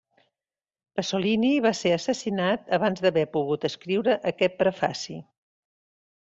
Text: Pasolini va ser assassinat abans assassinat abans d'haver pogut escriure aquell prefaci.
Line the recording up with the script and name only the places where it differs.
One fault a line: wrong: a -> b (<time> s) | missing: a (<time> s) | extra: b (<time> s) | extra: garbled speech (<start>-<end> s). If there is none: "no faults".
missing: assassinat abans (3.0 s)
wrong: aquell -> aquest (4.3 s)